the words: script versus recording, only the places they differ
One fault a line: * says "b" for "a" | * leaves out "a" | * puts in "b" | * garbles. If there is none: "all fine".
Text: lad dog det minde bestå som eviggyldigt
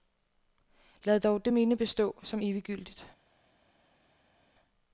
all fine